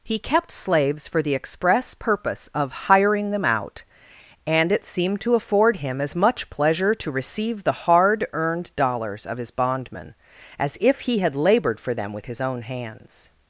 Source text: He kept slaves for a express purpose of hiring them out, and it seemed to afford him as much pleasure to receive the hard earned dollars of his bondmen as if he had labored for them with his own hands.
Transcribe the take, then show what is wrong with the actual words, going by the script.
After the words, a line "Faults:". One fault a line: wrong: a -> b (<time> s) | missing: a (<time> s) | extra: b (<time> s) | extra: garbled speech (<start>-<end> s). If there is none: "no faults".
He kept slaves for the express purpose of hiring them out, and it seemed to afford him as much pleasure to receive the hard earned dollars of his bondmen as if he had labored for them with his own hands.
Faults:
wrong: a -> the (1.2 s)